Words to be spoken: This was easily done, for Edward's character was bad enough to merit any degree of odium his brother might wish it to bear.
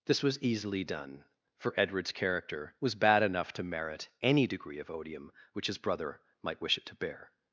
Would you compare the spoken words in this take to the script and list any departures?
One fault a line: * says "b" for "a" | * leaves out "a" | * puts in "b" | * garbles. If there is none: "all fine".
* puts in "which"